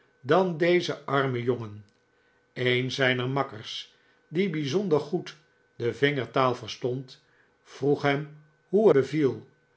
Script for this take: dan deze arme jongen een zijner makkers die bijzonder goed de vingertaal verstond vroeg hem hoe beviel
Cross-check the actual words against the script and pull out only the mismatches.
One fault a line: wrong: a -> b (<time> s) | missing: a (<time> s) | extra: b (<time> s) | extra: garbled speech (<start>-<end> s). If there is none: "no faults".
no faults